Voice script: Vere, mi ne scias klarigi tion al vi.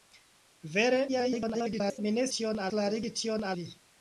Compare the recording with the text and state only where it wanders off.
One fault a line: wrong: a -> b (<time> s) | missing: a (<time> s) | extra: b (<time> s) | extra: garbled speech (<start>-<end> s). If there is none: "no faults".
extra: garbled speech (1.1-2.0 s)
wrong: scias -> tion (2.4 s)
missing: al (3.5 s)